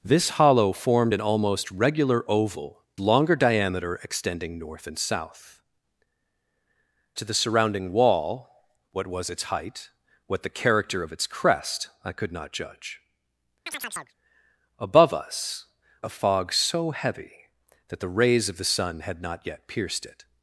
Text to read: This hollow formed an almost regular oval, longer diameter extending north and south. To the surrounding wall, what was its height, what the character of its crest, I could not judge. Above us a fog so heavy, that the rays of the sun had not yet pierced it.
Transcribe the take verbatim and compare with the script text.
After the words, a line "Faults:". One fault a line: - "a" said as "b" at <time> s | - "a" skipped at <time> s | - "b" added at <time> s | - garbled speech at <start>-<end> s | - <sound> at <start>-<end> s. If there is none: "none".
This hollow formed an almost regular oval, longer diameter extending north and south. To the surrounding wall, what was its height, what the character of its crest, I could not judge. Above us a fog so heavy, that the rays of the sun had not yet pierced it.
Faults:
- chirp at 13.7-14.1 s